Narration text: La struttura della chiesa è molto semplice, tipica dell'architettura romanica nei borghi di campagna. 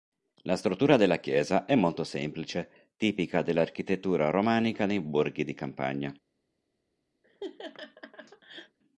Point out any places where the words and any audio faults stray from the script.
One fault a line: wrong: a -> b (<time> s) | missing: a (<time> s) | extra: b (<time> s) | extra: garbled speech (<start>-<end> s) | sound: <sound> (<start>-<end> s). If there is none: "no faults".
sound: laugh (7.2-8.8 s)